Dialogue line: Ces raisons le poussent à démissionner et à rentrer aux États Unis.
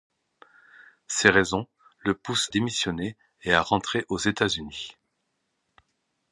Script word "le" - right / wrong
right